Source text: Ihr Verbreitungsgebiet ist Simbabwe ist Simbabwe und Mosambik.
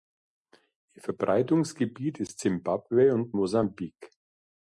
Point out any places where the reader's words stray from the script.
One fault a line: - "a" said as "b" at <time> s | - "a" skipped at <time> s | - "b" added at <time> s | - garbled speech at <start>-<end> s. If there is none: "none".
- "ist Simbabwe" skipped at 3.1 s